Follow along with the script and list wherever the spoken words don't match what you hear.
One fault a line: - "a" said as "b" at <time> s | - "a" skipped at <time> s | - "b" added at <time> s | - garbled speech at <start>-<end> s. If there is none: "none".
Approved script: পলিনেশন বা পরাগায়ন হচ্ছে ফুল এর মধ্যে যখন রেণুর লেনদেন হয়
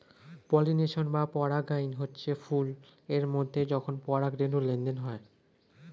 - "পরাগ" added at 4.0 s